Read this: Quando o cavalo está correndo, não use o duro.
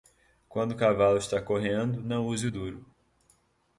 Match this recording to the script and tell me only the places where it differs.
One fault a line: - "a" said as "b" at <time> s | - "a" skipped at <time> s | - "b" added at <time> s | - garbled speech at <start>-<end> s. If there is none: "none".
none